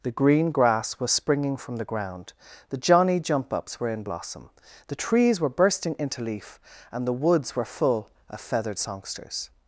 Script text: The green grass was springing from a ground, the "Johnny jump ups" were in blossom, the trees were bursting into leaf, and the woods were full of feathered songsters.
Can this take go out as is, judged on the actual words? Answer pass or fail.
fail